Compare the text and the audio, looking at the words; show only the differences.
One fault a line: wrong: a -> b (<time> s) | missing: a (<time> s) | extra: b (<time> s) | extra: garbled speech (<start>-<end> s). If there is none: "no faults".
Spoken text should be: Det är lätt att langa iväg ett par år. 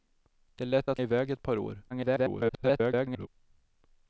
missing: langa (1.0 s)
extra: garbled speech (1.9-3.3 s)